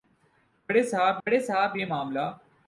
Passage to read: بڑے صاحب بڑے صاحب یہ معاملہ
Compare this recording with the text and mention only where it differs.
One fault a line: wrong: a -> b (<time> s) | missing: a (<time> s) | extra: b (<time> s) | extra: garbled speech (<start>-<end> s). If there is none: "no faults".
no faults